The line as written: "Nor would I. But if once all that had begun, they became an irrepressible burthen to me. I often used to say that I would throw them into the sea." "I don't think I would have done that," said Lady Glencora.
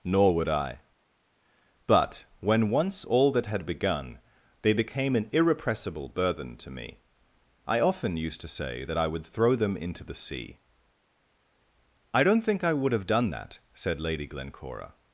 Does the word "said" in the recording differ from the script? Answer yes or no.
no